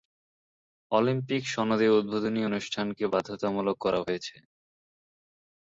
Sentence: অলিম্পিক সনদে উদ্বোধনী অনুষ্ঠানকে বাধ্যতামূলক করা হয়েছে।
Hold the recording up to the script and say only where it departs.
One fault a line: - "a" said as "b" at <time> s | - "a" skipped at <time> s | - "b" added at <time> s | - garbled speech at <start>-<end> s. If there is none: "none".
none